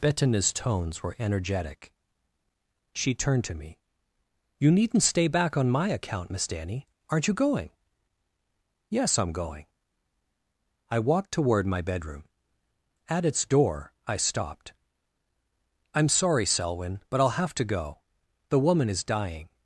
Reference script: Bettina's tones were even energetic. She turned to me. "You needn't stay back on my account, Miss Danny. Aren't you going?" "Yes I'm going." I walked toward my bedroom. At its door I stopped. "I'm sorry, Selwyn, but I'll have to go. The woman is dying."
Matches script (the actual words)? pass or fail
fail